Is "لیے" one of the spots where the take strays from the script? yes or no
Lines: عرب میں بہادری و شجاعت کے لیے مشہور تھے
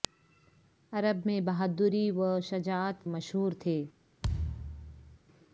yes